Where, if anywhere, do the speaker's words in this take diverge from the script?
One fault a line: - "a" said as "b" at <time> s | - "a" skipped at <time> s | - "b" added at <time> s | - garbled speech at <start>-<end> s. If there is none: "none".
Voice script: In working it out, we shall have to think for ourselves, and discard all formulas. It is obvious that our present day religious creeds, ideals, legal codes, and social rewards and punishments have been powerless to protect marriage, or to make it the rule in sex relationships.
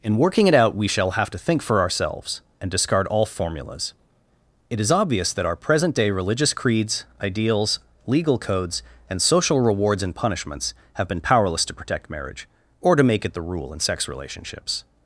none